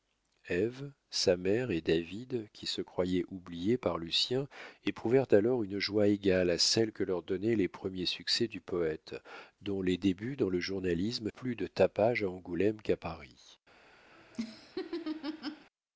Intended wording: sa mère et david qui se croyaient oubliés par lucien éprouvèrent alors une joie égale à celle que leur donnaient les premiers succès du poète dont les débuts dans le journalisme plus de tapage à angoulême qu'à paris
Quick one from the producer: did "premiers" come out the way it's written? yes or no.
yes